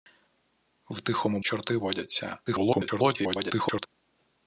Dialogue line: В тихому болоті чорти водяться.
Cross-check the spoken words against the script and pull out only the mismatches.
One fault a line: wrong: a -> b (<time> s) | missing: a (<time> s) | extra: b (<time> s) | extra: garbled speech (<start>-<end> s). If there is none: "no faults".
missing: болоті (1.4 s)
extra: garbled speech (2.5-3.9 s)